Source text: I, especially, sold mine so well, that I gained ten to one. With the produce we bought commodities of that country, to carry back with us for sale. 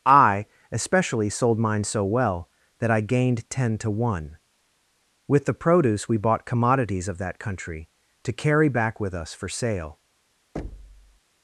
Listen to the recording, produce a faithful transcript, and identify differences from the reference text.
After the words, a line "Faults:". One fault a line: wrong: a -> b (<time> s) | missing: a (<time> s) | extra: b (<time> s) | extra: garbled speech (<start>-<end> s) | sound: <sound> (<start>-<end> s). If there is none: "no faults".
I, especially, sold mine so well, that I gained ten to one. With the produce we bought commodities of that country, to carry back with us for sale.
Faults:
sound: thud (10.6-11.2 s)